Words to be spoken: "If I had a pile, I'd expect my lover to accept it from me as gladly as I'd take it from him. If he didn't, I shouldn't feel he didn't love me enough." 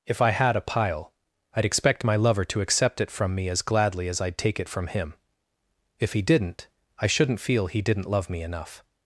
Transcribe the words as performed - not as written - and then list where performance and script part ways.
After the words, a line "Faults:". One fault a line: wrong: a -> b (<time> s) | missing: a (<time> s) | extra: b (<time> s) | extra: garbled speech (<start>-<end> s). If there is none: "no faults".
"If I had a pile, I'd expect my lover to accept it from me as gladly as I'd take it from him. If he didn't, I shouldn't feel he didn't love me enough."
Faults:
no faults